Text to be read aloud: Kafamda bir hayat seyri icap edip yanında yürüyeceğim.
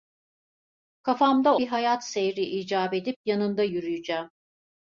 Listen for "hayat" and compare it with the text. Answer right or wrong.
right